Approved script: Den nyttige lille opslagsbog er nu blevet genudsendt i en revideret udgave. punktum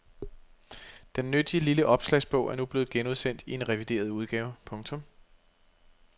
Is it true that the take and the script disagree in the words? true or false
false